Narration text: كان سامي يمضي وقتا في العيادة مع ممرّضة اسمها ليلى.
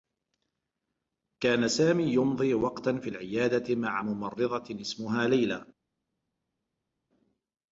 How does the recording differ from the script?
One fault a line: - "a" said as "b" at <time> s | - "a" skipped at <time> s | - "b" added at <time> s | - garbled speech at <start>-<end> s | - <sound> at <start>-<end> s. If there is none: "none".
none